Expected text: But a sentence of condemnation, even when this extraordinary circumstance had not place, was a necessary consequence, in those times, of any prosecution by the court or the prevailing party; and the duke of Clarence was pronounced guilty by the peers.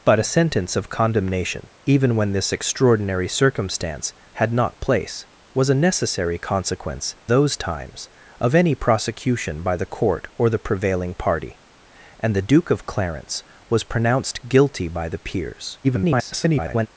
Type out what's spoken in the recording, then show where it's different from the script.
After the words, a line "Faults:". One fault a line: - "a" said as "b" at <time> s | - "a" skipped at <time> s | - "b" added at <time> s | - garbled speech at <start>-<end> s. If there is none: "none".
But a sentence of condemnation, even when this extraordinary circumstance had not place, was a necessary consequence, those times, of any prosecution by the court or the prevailing party; and the duke of Clarence was pronounced guilty by the peers. [garbled]
Faults:
- "in" skipped at 7.2 s
- garbled speech at 15.8-16.9 s